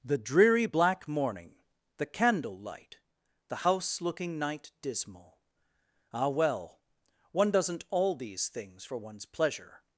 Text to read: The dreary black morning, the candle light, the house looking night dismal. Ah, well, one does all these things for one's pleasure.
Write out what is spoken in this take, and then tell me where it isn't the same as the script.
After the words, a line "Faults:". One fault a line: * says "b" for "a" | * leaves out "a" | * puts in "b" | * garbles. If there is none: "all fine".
The dreary black morning, the candle light, the house looking night dismal. Ah, well, one doesn't all these things for one's pleasure.
Faults:
* says "doesn't" for "does"